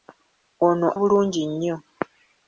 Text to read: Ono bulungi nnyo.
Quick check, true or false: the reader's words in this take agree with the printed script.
true